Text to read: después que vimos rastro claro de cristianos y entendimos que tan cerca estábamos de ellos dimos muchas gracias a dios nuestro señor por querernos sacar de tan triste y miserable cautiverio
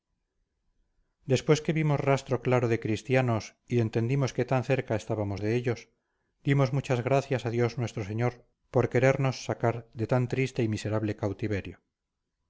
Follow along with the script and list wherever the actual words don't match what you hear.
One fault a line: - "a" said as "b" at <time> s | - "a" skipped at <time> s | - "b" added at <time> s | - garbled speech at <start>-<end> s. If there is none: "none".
none